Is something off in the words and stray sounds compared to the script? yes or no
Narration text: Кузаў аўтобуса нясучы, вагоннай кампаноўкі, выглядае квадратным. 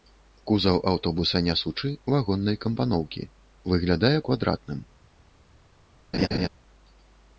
yes